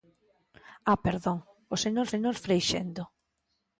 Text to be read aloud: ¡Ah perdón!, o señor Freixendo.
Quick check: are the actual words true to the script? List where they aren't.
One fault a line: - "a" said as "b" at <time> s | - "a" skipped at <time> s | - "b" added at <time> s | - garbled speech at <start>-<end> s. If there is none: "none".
- "señor" added at 2.1 s